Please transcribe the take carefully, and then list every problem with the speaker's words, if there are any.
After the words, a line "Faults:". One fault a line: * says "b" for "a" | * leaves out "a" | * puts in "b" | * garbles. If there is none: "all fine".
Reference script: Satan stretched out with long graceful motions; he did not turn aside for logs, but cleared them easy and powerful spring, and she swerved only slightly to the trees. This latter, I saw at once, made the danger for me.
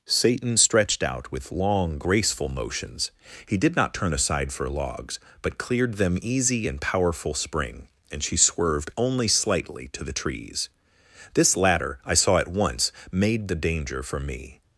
Satan stretched out with long graceful motions; he did not turn aside for logs, but cleared them easy and powerful spring, and she swerved only slightly to the trees. This latter, I saw at once, made the danger for me.
Faults:
all fine